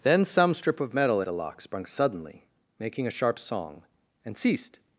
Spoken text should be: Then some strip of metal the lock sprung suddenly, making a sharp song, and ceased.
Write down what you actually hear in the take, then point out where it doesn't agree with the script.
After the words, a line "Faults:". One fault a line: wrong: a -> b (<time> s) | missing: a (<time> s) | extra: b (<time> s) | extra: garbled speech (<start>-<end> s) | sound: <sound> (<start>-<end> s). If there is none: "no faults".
Then some strip of metal the lock sprung suddenly, making a sharp song, and ceased.
Faults:
no faults